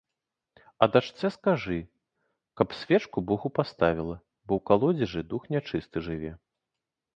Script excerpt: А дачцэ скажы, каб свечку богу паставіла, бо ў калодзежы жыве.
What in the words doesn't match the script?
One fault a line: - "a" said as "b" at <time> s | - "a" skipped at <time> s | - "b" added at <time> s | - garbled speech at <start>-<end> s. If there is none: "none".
- "дух нячысты" added at 5.3 s